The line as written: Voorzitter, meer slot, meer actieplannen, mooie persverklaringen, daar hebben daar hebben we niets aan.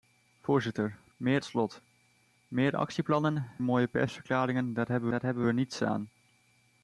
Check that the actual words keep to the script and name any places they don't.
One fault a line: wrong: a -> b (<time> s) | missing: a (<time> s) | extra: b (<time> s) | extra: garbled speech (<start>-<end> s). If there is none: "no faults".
no faults